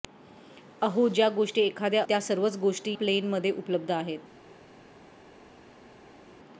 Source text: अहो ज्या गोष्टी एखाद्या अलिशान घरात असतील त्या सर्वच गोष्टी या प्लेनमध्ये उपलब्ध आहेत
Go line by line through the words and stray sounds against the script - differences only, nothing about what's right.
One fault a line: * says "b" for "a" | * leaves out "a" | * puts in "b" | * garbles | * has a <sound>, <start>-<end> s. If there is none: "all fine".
* leaves out "अलिशान घरात असतील"
* leaves out "या"